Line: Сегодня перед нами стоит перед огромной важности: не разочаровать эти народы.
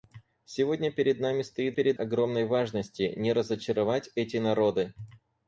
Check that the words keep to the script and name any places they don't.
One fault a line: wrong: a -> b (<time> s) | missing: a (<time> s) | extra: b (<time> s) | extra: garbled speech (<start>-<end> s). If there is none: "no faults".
no faults